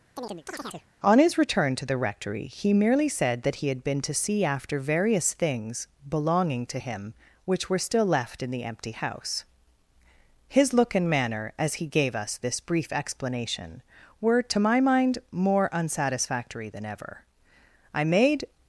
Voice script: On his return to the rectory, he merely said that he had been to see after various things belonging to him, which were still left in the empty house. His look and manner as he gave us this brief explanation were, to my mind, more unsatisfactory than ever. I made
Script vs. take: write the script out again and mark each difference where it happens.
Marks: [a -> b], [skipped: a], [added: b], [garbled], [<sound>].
[chirp] On his return to the rectory, he merely said that he had been to see after various things belonging to him, which were still left in the empty house. His look and manner as he gave us this brief explanation were, to my mind, more unsatisfactory than ever. I made